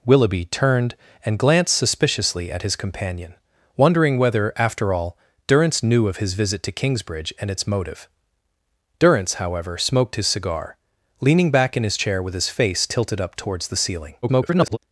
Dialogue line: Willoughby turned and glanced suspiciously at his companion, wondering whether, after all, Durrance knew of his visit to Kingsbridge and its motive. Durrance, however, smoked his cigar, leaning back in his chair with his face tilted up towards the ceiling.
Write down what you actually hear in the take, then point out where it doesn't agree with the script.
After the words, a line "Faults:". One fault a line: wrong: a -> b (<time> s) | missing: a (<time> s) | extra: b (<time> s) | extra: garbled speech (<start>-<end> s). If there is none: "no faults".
Willoughby turned and glanced suspiciously at his companion, wondering whether, after all, Durrance knew of his visit to Kingsbridge and its motive. Durrance, however, smoked his cigar, leaning back in his chair with his face tilted up towards the ceiling. [garbled]
Faults:
extra: garbled speech (14.2-14.8 s)